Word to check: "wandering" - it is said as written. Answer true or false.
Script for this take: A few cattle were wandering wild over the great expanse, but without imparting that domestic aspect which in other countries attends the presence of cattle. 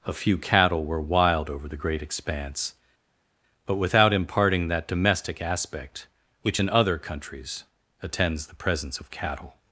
false